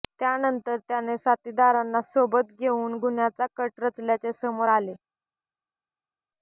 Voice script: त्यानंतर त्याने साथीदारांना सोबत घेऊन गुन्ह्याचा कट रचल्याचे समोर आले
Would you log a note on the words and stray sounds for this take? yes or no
no